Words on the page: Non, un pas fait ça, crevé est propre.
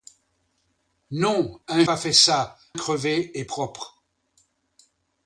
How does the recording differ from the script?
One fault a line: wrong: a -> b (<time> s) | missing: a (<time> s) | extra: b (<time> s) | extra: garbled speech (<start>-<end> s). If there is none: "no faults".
no faults